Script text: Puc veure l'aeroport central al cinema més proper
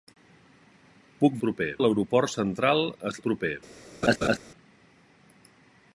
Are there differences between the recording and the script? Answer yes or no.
yes